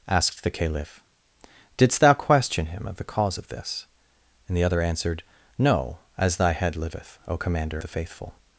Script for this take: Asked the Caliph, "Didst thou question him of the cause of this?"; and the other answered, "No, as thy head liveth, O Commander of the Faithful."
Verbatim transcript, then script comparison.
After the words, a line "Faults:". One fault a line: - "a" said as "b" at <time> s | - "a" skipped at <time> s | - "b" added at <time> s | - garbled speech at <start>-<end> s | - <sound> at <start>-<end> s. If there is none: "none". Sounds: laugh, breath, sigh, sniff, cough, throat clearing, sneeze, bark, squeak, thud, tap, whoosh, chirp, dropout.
Asked the Caliph, "Didst thou question him of the cause of this?"; and the other answered, "No, as thy head liveth, O Commander the Faithful."
Faults:
- "of" skipped at 7.8 s